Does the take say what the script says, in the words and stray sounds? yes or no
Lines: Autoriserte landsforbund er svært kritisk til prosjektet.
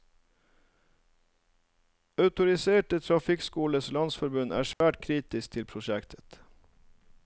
no